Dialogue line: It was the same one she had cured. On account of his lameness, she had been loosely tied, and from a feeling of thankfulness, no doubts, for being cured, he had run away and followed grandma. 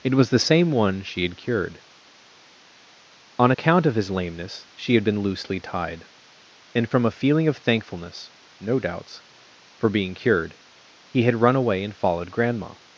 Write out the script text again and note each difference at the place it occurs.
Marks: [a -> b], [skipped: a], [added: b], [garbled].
It was the same one she had cured. On account of his lameness, she had been loosely tied, and from a feeling of thankfulness, no doubts, for being cured, he had run away and followed grandma.